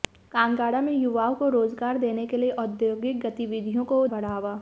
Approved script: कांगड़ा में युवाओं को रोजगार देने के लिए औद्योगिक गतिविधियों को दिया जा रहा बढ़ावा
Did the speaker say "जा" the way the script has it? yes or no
no